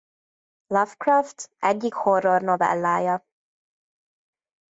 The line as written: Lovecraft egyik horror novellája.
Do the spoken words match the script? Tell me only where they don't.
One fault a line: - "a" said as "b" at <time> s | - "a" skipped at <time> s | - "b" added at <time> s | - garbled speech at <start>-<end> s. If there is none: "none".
none